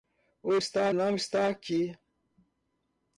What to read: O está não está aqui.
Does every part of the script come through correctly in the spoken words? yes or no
yes